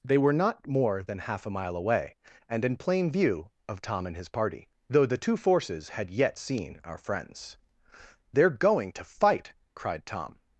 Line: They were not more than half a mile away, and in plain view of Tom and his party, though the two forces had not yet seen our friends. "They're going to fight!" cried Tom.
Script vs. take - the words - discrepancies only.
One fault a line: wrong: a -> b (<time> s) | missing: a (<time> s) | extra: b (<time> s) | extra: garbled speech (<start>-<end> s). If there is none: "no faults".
missing: not (6.1 s)